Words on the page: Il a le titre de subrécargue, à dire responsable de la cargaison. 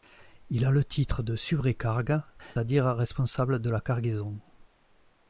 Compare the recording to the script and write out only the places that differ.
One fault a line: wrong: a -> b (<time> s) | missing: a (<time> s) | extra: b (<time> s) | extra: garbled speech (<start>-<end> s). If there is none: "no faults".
no faults